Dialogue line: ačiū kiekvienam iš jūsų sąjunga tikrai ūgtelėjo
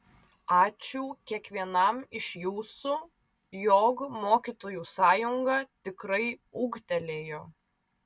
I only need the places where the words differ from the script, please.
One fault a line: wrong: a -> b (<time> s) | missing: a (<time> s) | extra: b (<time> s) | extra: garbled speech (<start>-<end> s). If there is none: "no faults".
extra: jog mokytojų (3.6 s)